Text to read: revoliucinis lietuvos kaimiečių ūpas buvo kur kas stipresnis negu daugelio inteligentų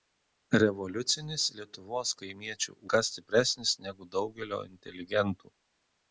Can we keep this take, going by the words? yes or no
no